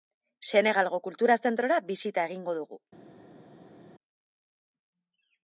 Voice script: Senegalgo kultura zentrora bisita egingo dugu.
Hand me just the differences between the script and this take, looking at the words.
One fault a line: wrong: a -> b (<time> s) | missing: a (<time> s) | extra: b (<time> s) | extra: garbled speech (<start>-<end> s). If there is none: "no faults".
no faults